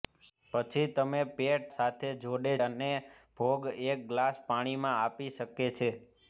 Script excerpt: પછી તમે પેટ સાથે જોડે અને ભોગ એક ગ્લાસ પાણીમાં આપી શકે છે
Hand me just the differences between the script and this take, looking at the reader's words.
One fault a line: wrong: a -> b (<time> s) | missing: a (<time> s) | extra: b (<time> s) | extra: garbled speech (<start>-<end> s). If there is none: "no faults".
no faults